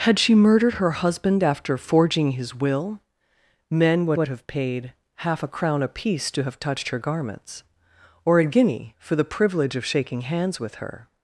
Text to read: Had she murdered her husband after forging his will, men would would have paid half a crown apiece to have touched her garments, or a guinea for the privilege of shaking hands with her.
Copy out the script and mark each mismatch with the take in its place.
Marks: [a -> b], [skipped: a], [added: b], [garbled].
Had she murdered her husband after forging his will, men would would have paid half a crown apiece to have touched her garments, or a guinea for the privilege of shaking hands with her.